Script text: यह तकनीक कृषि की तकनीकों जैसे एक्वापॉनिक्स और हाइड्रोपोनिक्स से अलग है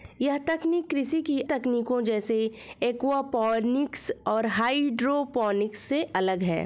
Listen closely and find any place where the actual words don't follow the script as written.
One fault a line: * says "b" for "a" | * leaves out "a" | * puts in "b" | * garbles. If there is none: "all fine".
all fine